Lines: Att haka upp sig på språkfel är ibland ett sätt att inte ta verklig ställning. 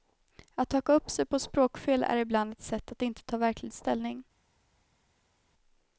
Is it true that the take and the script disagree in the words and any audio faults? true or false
false